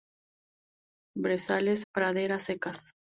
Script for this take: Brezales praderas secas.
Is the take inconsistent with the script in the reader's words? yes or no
no